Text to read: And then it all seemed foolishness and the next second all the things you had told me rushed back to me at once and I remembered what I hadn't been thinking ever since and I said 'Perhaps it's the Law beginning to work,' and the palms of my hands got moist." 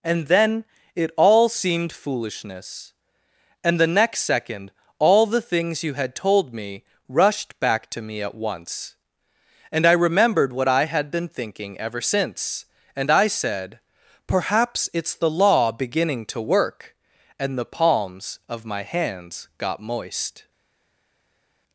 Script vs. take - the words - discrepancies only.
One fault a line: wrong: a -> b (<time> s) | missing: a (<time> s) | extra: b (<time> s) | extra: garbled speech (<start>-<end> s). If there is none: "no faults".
wrong: hadn't -> had (10.8 s)